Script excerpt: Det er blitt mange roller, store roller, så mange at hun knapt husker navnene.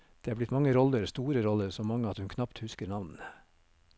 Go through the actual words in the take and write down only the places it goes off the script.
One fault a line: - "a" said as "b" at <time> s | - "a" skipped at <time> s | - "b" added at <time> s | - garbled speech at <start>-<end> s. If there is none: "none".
none